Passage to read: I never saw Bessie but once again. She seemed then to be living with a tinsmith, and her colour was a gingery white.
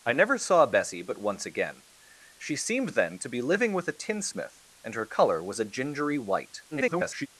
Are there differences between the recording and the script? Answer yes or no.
yes